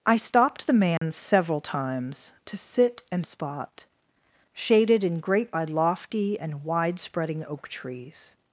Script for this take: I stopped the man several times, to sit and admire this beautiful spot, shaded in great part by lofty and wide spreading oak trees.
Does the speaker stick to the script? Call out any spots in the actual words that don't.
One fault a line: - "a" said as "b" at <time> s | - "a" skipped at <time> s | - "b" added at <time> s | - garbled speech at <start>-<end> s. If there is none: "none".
- "admire this beautiful" skipped at 3.3 s
- "part" skipped at 5.5 s